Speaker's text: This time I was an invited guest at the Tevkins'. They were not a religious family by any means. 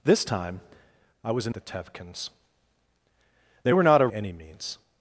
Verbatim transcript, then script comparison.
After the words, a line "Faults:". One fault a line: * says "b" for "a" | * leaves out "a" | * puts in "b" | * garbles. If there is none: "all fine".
This time I was an the Tevkins'. They were not a any means.
Faults:
* leaves out "invited guest at"
* leaves out "religious family by"